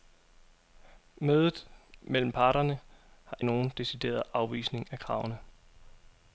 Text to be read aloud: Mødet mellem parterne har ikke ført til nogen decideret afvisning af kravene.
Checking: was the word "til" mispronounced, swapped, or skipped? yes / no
yes